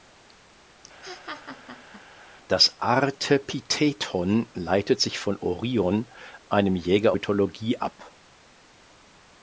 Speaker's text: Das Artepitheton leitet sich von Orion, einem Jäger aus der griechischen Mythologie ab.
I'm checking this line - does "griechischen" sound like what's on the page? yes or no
no